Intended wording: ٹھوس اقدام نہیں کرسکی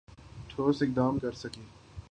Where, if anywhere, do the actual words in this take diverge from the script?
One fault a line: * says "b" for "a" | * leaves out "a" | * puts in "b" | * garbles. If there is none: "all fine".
* leaves out "نہیں"